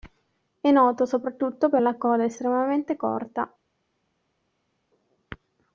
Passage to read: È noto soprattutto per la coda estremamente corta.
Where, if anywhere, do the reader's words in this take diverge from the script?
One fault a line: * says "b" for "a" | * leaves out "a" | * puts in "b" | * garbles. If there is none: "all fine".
all fine